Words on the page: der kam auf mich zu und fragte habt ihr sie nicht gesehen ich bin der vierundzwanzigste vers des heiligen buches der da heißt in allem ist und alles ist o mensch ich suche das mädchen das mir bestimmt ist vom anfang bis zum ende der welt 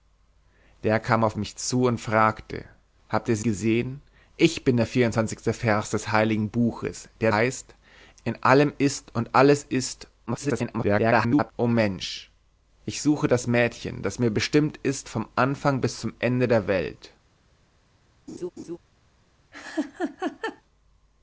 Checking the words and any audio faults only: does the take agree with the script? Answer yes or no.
no